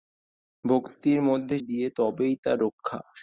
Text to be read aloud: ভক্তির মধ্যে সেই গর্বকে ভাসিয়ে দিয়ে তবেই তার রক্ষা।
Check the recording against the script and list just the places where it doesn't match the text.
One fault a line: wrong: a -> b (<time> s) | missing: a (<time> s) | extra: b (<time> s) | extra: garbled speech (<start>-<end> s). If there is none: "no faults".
missing: সেই গর্বকে ভাসিয়ে (1.6 s)